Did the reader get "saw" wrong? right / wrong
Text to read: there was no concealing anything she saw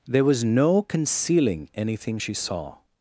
right